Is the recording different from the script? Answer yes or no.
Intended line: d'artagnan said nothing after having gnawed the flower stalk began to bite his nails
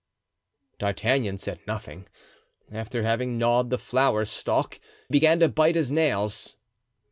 no